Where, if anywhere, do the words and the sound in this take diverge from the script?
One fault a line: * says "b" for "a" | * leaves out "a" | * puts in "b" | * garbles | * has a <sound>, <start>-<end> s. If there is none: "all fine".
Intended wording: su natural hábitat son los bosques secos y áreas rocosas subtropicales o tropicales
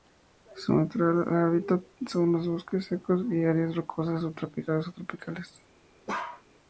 * has a bark, 6.1-6.4 s